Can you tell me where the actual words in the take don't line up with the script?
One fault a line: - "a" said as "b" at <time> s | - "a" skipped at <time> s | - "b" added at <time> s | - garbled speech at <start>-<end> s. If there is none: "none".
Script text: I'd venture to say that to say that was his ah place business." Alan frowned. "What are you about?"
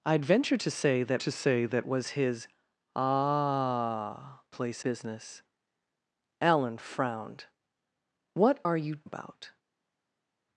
none